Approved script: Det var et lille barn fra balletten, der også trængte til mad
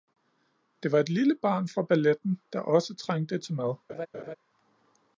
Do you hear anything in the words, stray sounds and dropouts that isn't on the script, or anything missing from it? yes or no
yes